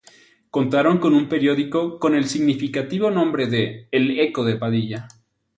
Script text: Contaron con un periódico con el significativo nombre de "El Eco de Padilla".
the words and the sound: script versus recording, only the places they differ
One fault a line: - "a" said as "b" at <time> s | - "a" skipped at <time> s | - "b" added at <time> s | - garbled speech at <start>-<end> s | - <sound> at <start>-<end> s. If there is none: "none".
none